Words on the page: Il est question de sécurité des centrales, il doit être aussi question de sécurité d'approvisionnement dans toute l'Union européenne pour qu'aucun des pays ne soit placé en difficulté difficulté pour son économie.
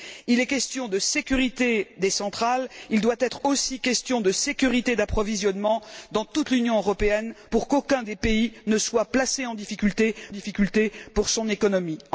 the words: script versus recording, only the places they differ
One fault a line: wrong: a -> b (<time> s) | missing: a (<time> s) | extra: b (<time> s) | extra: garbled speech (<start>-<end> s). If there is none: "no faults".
no faults